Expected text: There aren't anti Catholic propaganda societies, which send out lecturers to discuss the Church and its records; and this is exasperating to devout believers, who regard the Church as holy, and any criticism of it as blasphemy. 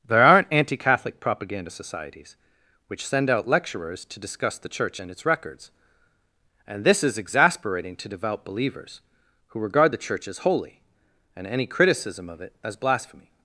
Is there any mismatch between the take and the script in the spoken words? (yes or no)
no